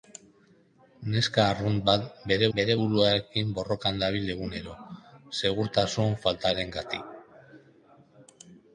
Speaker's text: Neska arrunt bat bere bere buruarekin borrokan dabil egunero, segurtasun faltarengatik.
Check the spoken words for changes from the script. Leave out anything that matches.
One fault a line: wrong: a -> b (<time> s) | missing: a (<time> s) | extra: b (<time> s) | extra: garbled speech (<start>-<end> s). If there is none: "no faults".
no faults